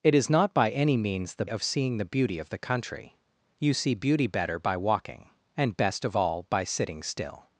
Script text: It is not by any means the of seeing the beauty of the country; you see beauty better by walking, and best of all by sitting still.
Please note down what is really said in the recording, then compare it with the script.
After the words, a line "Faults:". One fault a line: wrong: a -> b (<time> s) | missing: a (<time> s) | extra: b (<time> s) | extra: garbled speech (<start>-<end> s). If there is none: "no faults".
It is not by any means the of seeing the beauty of the country; you see beauty better by walking, and best of all by sitting still.
Faults:
no faults